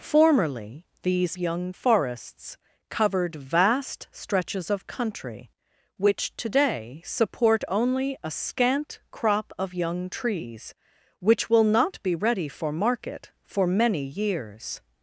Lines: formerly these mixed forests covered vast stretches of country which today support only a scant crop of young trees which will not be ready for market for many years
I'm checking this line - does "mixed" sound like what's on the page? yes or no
no